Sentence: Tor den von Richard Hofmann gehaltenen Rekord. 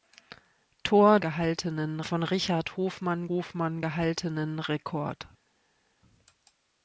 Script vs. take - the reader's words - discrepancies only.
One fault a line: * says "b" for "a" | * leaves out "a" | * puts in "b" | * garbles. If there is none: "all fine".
* says "gehaltenen" for "den"
* puts in "Hofmann"